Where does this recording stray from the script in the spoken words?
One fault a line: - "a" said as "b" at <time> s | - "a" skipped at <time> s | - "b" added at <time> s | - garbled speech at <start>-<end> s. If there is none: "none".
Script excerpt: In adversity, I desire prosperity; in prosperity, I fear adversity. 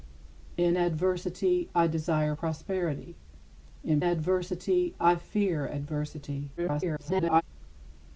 - "prosperity" said as "adversity" at 4.0 s
- garbled speech at 6.6-7.4 s